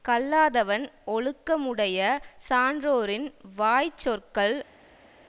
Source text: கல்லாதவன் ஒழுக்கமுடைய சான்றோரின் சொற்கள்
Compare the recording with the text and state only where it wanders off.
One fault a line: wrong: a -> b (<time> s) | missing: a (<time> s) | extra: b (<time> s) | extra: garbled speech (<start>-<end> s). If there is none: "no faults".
extra: வாய் (3.5 s)